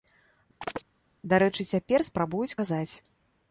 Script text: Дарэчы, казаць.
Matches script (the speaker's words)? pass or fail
fail